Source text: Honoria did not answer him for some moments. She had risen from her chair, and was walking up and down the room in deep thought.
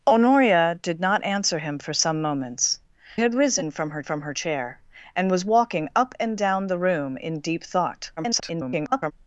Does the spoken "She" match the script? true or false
false